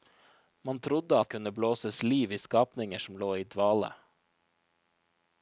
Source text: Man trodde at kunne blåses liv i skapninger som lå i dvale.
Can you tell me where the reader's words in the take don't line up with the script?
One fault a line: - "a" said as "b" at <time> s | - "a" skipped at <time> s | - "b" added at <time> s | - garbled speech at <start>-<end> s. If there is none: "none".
none